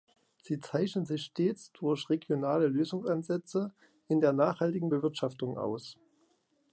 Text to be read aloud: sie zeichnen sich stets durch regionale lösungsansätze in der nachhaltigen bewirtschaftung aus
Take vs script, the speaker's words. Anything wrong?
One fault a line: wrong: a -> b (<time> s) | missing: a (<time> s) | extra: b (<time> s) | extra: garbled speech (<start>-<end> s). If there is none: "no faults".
no faults